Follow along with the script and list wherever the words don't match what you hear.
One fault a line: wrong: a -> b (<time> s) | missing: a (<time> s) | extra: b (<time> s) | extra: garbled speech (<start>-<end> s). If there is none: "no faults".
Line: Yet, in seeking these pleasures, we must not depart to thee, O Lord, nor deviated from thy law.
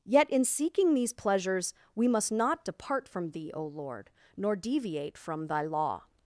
wrong: to -> from (3.1 s)
wrong: deviated -> deviate (4.5 s)